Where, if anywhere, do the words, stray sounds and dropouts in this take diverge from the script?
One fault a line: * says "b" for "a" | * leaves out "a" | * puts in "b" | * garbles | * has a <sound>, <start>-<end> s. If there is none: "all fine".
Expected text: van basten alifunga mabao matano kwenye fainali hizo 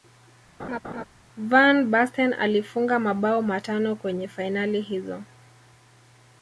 * has a laugh, 0.6-1.0 s